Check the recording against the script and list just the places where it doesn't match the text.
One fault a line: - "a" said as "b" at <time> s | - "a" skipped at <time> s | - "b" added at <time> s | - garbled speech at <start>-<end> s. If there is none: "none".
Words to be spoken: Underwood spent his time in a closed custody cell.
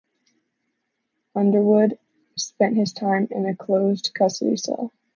none